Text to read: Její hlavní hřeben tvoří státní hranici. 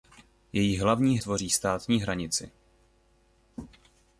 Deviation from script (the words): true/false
true